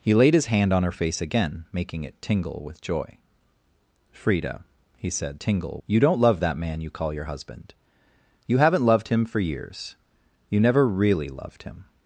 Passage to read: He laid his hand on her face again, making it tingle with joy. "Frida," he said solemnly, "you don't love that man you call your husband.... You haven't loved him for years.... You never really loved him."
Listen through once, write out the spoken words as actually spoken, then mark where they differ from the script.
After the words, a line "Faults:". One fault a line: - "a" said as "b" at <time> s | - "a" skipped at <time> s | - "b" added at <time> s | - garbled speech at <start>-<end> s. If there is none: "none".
He laid his hand on her face again, making it tingle with joy. "Frida," he said tingle, "you don't love that man you call your husband.... You haven't loved him for years.... You never really loved him."
Faults:
- "solemnly" said as "tingle" at 5.4 s